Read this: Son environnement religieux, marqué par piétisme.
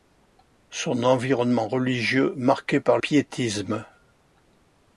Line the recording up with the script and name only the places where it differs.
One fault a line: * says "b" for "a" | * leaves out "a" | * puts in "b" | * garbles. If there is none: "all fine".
all fine